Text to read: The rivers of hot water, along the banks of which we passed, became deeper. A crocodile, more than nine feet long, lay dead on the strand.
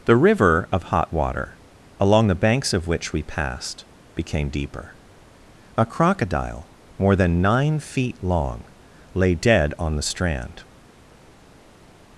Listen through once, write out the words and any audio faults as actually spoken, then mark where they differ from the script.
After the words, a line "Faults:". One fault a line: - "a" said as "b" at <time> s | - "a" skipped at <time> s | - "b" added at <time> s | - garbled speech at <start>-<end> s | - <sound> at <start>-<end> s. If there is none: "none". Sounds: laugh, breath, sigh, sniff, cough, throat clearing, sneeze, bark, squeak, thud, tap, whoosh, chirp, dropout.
The river of hot water, along the banks of which we passed, became deeper. A crocodile, more than nine feet long, lay dead on the strand.
Faults:
- "rivers" said as "river" at 0.1 s